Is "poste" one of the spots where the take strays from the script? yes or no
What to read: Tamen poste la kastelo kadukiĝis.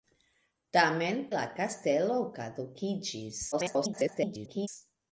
yes